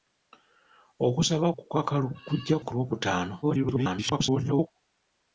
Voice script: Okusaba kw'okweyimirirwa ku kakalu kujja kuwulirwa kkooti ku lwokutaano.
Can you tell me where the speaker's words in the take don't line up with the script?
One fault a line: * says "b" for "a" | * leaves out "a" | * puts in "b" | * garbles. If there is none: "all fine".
* leaves out "kw'okweyimirirwa"
* leaves out "kuwulirwa kkooti"
* garbles